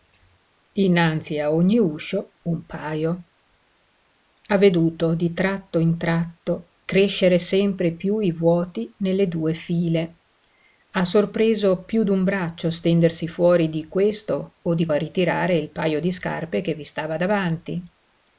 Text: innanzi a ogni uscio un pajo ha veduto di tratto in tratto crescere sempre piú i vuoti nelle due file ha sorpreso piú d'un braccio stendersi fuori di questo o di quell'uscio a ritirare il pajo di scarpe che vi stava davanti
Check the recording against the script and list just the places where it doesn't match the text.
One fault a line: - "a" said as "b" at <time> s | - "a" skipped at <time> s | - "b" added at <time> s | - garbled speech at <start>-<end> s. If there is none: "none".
- "quell'uscio" skipped at 14.9 s